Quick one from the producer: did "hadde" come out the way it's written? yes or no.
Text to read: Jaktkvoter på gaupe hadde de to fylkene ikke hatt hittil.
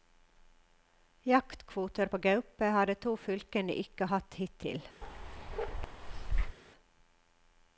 no